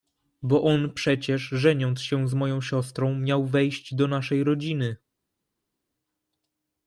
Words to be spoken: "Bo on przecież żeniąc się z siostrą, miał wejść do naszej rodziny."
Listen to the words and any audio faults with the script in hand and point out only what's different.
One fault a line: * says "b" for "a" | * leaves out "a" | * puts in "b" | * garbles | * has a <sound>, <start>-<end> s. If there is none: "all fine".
* puts in "moją"